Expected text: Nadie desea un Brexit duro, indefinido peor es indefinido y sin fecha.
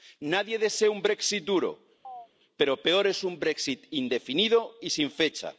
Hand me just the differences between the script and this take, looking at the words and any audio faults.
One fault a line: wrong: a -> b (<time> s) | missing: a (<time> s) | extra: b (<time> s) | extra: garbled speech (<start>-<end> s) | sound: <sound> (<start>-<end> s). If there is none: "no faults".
sound: chirp (2.0-2.3 s)
wrong: indefinido -> pero (2.6 s)
extra: un Brexit (3.2 s)